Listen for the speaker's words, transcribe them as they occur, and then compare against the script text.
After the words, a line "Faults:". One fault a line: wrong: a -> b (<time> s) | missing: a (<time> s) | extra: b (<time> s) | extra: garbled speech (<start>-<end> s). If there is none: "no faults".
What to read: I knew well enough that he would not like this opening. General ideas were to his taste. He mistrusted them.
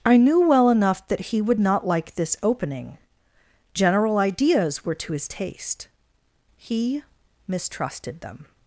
I knew well enough that he would not like this opening. General ideas were to his taste. He mistrusted them.
Faults:
no faults